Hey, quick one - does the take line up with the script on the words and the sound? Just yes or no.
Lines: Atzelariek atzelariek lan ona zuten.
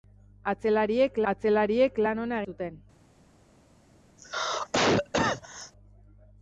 no